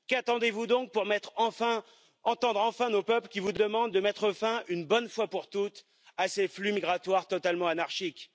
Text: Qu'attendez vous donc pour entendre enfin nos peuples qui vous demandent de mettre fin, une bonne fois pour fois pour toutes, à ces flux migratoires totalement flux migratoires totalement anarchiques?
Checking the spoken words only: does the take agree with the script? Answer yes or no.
no